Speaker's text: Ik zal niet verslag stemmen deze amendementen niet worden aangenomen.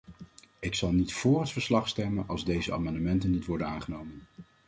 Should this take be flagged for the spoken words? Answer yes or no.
yes